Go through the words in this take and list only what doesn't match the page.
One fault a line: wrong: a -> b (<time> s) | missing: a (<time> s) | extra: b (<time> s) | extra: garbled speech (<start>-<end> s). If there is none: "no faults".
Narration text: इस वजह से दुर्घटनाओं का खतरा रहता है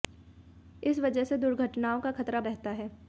no faults